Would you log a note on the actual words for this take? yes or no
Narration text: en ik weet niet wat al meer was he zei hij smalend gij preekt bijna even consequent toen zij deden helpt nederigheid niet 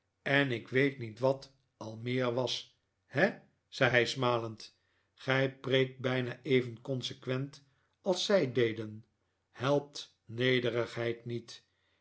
yes